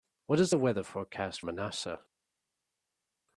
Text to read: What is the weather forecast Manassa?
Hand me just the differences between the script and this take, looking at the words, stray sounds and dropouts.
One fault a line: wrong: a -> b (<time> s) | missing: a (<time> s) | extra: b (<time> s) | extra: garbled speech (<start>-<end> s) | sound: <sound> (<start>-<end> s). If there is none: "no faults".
no faults